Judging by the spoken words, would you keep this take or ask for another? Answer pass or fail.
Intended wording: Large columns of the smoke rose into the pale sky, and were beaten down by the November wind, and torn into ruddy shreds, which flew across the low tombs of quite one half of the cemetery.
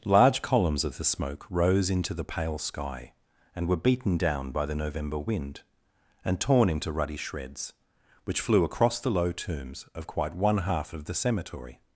pass